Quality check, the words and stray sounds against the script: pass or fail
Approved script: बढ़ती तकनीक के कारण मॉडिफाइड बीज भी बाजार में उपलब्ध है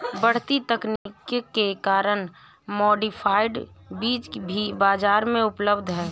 fail